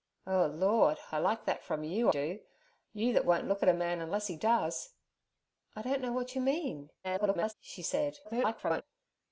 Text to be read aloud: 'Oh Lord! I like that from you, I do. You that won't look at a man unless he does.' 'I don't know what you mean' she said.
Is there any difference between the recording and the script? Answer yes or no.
yes